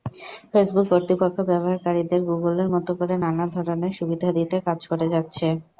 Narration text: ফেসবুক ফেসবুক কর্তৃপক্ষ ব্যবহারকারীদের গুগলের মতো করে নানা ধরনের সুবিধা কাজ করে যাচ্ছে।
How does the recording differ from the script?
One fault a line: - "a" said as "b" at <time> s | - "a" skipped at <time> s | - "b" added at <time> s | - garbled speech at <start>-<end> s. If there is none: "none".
- "ফেসবুক" skipped at 0.9 s
- "দিতে" added at 4.4 s